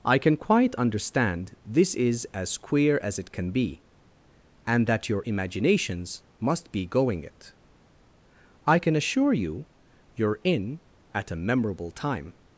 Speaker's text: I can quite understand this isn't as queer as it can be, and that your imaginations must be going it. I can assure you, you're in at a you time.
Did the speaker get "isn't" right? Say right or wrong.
wrong